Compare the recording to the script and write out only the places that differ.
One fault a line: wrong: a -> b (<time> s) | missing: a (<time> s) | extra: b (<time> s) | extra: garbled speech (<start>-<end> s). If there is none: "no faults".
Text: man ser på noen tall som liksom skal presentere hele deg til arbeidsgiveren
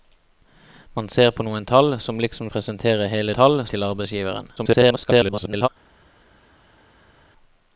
missing: skal (2.5 s)
wrong: deg -> tall (3.4 s)
extra: garbled speech (4.6-5.7 s)